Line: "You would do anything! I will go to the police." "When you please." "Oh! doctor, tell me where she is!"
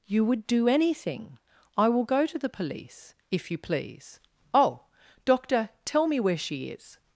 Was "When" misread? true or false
true